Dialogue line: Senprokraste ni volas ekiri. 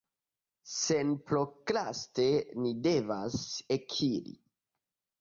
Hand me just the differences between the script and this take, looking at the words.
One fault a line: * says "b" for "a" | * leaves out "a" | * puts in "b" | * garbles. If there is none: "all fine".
* says "devas" for "volas"